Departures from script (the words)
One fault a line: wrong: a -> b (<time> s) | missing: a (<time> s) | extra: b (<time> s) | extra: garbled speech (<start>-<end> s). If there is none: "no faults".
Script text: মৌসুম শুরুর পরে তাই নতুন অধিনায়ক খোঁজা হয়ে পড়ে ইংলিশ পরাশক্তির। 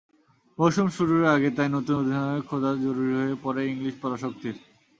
wrong: পরে -> আগে (1.2 s)
extra: জরুরি (2.8 s)